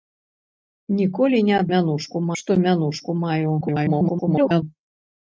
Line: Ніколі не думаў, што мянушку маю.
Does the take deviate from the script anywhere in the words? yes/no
yes